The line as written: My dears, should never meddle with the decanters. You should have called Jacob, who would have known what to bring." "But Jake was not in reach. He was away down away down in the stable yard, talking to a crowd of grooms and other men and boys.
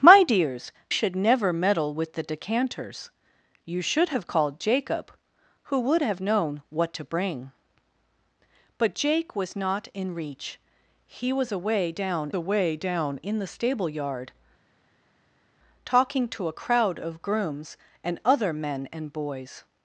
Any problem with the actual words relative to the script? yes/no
no